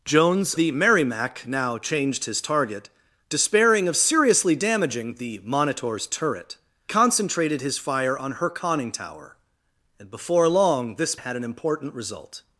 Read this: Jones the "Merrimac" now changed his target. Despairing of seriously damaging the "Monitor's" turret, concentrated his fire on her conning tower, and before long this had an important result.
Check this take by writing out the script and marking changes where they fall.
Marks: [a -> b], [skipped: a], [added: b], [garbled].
Jones the "Merrimac" now changed his target. Despairing of seriously damaging the "Monitor's" turret, concentrated his fire on her conning tower, and before long this had an important result.